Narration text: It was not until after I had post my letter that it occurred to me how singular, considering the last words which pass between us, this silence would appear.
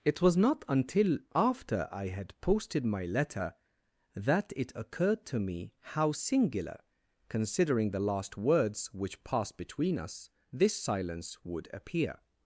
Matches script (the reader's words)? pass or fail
fail